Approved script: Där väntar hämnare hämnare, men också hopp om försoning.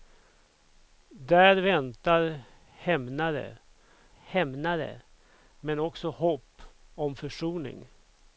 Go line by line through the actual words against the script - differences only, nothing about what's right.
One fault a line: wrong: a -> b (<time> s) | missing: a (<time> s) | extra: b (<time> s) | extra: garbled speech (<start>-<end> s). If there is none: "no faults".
no faults